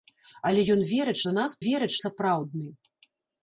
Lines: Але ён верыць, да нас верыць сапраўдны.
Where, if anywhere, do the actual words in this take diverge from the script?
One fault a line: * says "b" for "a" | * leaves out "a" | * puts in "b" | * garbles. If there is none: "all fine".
all fine